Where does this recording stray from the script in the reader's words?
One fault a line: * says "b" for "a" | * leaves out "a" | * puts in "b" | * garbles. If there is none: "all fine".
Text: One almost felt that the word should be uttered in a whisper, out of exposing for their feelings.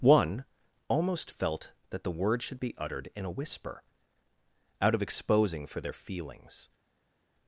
all fine